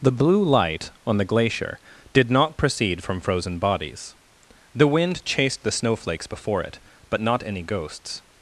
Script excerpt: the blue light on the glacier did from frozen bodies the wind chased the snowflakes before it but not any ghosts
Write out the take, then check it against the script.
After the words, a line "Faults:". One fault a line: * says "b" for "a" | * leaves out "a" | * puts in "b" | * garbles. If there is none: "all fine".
the blue light on the glacier did not proceed from frozen bodies the wind chased the snowflakes before it but not any ghosts
Faults:
* puts in "not proceed"